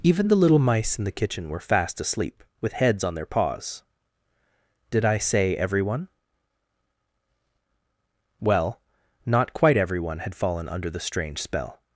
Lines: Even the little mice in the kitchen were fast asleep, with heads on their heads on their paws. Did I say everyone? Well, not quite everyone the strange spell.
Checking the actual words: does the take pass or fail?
fail